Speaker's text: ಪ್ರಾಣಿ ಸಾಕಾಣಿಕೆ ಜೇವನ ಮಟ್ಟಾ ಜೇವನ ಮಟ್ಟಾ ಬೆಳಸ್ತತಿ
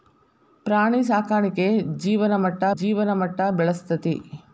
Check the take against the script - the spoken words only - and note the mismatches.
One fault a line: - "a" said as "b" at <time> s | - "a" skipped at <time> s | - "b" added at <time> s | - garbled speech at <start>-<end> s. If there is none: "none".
none